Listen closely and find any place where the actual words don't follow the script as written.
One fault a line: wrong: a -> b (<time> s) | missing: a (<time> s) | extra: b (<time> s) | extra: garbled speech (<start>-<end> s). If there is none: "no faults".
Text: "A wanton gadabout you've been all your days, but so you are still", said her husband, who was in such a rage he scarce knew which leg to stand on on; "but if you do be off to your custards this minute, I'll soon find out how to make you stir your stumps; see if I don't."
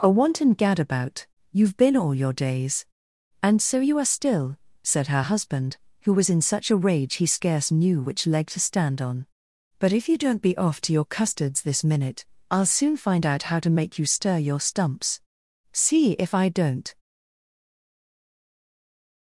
wrong: but -> and (3.4 s)
missing: on (9.3 s)
wrong: do -> don't (10.2 s)